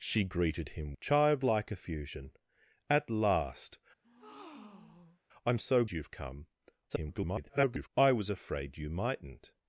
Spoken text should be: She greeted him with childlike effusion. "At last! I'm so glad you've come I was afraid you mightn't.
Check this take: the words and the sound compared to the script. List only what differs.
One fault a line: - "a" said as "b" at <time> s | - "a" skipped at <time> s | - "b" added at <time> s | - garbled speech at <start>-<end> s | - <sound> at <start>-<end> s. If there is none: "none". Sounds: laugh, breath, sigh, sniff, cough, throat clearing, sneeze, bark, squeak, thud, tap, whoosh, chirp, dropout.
- "with" skipped at 1.0 s
- breath at 4.0-5.2 s
- "glad" skipped at 5.9 s
- garbled speech at 6.9-7.9 s